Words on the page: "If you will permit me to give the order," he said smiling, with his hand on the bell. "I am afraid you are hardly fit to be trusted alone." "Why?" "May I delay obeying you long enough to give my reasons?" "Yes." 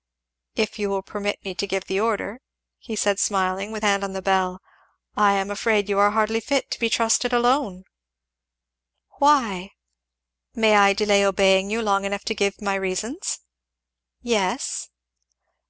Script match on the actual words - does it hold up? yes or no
no